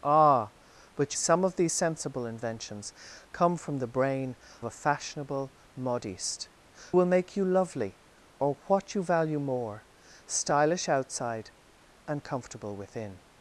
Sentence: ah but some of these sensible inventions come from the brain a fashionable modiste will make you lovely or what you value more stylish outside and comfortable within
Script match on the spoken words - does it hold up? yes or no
yes